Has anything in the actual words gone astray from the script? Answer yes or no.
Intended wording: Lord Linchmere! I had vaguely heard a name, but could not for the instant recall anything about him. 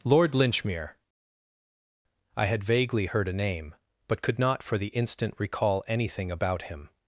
no